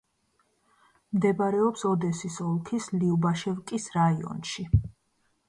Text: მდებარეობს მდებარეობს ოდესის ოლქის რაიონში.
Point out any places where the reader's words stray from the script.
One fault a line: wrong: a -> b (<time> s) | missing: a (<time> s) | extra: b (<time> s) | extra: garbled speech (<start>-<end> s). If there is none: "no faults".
missing: მდებარეობს (1.8 s)
extra: ლიუბაშევკის (3.0 s)